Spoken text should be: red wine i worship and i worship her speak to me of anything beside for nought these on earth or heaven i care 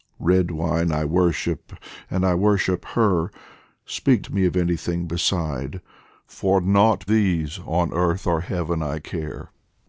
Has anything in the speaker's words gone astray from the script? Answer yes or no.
no